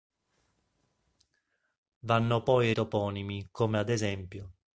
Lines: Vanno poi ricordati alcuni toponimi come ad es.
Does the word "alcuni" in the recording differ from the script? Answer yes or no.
yes